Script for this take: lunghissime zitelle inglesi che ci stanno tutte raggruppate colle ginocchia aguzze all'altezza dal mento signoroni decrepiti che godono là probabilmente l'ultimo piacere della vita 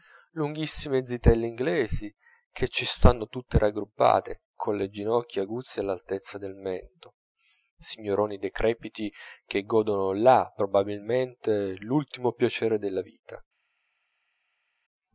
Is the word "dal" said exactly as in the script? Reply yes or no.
no